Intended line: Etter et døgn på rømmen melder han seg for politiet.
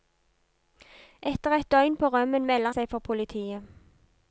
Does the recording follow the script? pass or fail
fail